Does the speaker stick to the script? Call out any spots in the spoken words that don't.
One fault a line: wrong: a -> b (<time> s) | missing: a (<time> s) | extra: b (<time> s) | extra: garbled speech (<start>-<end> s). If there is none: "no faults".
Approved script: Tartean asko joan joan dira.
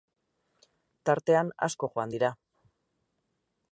missing: joan (2.1 s)